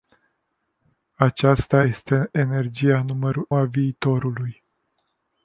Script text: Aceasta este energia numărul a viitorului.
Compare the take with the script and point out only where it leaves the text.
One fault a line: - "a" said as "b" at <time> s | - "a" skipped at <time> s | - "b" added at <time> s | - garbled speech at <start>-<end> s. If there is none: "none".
none